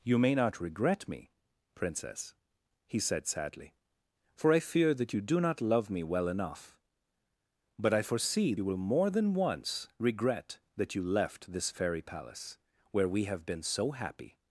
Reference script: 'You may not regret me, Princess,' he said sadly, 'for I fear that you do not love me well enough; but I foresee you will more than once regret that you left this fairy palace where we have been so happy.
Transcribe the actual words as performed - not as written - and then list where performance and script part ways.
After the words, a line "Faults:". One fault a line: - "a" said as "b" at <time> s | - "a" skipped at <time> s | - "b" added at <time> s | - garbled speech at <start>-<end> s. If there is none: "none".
'You may not regret me, Princess,' he said sadly, 'for I fear that you do not love me well enough; but I foresee you will more than once regret that you left this fairy palace where we have been so happy.
Faults:
none